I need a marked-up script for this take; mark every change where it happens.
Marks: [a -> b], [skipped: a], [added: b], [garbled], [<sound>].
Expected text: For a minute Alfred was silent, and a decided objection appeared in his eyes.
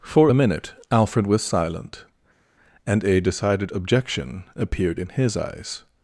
For a minute Alfred was silent, and a decided objection appeared in his eyes.